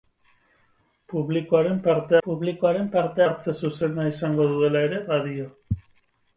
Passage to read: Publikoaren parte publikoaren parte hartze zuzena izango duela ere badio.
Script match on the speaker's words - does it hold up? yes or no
yes